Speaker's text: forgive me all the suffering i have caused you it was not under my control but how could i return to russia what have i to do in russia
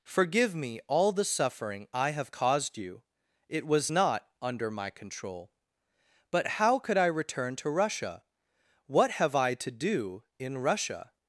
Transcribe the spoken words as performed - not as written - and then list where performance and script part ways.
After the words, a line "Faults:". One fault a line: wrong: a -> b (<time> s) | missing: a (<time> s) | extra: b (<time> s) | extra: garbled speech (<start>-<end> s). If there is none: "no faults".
forgive me all the suffering i have caused you it was not under my control but how could i return to russia what have i to do in russia
Faults:
no faults